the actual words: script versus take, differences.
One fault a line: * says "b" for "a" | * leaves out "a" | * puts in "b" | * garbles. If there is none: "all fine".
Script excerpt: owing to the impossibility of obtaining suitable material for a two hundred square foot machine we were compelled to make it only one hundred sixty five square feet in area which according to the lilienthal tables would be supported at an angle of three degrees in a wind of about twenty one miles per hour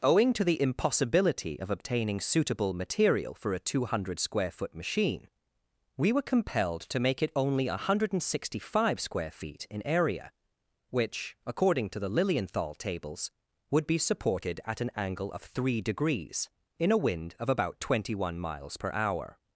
all fine